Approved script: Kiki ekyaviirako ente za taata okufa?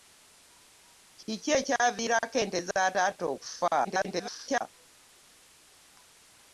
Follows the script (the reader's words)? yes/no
no